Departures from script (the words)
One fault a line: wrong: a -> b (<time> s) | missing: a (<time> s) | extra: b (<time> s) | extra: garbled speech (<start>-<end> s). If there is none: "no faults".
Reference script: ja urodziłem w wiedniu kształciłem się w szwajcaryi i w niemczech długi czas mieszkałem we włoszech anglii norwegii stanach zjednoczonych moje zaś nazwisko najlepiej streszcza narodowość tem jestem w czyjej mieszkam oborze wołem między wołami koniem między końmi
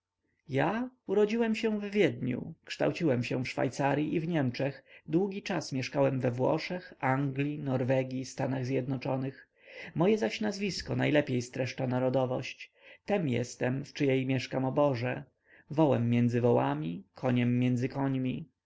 extra: się (1.6 s)